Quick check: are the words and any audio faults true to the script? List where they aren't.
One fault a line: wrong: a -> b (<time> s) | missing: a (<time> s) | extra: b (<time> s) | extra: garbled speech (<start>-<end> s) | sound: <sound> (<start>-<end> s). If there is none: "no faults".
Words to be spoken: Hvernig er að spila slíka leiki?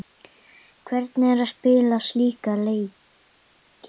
no faults